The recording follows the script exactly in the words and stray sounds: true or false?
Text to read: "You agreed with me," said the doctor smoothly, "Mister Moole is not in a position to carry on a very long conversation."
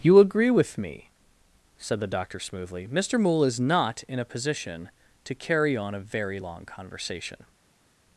false